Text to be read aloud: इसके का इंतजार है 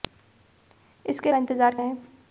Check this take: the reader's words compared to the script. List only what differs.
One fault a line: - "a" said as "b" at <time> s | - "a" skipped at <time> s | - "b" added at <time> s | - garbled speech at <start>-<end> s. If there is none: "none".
none